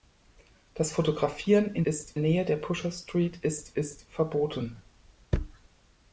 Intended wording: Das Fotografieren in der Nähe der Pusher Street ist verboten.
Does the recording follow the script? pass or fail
fail